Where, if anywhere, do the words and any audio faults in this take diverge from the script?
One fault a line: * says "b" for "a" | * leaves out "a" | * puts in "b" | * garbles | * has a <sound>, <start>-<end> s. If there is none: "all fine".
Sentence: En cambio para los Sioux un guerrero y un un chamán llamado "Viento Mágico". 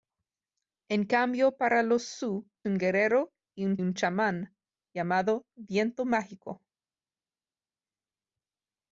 all fine